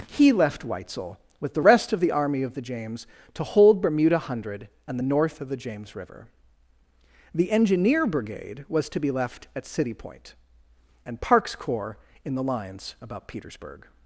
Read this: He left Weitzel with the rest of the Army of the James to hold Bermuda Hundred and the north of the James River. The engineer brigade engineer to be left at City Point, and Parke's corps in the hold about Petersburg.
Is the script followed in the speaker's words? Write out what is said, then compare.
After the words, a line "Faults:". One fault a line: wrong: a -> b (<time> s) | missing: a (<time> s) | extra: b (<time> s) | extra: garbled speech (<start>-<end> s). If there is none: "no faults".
He left Weitzel with the rest of the Army of the James to hold Bermuda Hundred and the north of the James River. The engineer brigade was to be left at City Point, and Parke's corps in the lines about Petersburg.
Faults:
wrong: engineer -> was (8.7 s)
wrong: hold -> lines (12.4 s)